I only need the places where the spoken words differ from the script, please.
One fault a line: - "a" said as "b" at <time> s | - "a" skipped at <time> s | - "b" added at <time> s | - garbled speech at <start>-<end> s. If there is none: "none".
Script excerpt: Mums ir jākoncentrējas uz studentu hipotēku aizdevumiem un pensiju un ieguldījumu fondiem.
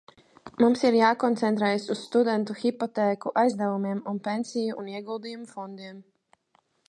none